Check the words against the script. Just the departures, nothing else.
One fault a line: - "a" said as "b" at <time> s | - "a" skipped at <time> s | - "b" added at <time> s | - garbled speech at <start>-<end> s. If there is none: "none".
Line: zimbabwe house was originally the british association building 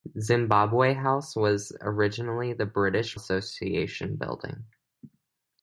none